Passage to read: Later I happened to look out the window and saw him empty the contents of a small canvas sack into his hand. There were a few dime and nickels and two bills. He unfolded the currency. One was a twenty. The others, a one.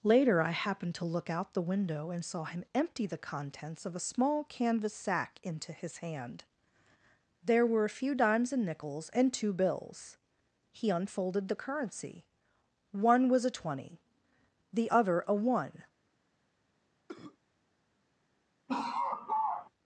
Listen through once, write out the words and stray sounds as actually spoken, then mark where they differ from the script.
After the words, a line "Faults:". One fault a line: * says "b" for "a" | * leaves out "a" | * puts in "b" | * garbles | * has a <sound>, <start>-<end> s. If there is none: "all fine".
Later I happened to look out the window and saw him empty the contents of a small canvas sack into his hand. There were a few dimes and nickels and two bills. He unfolded the currency. One was a twenty. The other, a one.
Faults:
* says "dimes" for "dime"
* says "other" for "others"
* has a cough, 17.1-17.4 s
* has a laugh, 18.7-19.7 s